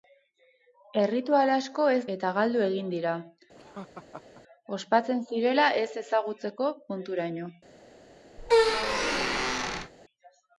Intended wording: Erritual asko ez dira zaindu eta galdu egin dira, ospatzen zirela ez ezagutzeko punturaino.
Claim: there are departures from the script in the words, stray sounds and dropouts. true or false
true